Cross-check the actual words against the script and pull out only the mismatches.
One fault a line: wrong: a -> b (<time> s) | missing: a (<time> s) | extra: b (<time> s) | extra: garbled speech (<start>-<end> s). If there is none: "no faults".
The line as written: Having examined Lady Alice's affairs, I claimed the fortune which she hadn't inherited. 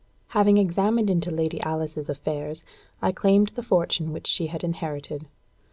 extra: into (1.1 s)
wrong: hadn't -> had (4.5 s)